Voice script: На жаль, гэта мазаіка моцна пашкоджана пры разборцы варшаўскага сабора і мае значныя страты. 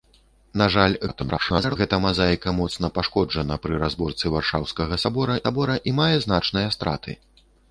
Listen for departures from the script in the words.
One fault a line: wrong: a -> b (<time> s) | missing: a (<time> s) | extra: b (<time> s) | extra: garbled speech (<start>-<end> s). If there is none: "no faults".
extra: garbled speech (1.1-1.8 s)
extra: сабора (5.4 s)